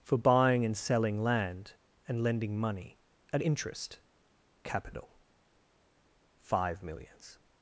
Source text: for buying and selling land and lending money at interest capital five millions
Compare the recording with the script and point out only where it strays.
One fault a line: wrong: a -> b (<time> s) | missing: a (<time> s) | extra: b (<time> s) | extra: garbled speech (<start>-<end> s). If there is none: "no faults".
no faults